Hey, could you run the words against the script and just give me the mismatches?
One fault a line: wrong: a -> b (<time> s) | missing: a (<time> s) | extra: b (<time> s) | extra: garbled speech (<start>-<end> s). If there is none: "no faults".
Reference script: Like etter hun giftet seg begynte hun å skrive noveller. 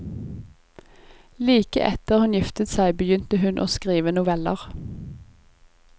no faults